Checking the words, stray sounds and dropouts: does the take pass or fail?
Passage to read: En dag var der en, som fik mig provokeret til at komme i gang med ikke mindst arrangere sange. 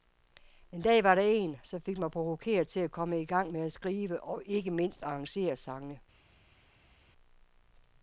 fail